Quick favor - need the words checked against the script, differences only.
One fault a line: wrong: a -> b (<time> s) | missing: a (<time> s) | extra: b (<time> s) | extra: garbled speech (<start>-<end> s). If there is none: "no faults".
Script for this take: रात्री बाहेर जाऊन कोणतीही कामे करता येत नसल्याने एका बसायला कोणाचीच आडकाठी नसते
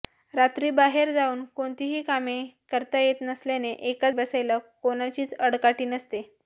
no faults